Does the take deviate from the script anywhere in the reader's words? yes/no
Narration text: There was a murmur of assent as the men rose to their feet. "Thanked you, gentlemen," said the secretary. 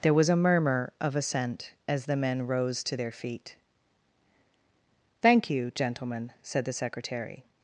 yes